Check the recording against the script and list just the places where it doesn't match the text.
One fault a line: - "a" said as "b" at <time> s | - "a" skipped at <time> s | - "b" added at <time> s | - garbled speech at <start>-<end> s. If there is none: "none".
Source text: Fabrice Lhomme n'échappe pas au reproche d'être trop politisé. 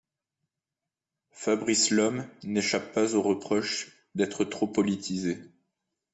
none